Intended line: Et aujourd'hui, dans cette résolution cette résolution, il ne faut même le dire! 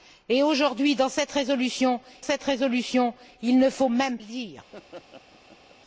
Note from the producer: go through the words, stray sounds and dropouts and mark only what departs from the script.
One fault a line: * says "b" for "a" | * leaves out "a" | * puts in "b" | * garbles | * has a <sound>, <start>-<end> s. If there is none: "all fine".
* has a laugh, 4.7-5.8 s